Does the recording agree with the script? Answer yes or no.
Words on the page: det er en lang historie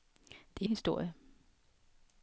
no